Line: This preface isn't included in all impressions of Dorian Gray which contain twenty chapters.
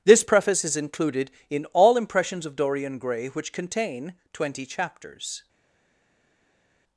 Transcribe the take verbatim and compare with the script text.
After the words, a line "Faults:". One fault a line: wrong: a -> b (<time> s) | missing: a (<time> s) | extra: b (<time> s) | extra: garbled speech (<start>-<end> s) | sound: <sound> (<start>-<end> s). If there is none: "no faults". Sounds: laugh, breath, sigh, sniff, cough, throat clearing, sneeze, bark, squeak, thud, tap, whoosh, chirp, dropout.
This preface is included in all impressions of Dorian Gray which contain twenty chapters.
Faults:
wrong: isn't -> is (0.6 s)